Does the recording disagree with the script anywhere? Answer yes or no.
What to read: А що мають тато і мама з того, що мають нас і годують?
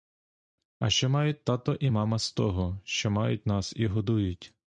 no